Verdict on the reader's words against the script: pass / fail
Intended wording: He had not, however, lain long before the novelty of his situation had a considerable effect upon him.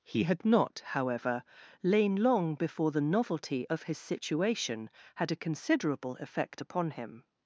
pass